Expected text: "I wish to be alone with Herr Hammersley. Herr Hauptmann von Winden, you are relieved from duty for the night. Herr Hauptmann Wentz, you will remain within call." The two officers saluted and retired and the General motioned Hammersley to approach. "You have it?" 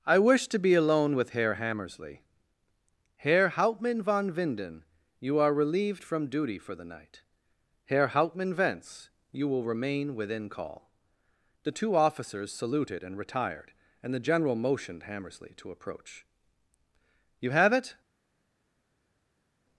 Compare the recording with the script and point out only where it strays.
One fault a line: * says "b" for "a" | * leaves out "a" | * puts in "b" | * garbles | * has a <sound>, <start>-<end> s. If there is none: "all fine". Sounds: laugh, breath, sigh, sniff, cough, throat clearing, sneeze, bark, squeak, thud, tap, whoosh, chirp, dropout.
all fine